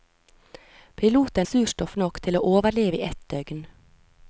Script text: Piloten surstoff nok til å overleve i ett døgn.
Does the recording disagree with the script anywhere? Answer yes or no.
no